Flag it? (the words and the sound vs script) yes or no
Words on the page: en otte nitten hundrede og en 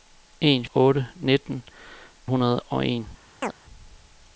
yes